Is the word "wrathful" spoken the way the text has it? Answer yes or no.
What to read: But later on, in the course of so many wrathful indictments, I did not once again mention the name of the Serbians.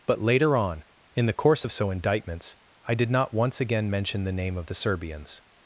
no